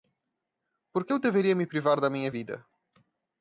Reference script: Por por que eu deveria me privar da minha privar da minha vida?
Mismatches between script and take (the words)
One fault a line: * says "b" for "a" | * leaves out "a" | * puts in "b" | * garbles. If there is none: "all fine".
* leaves out "por"
* leaves out "privar da minha"